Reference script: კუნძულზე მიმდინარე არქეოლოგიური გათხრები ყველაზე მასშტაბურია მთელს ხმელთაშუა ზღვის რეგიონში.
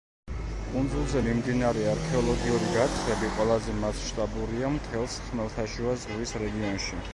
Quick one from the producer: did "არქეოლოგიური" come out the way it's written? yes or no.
yes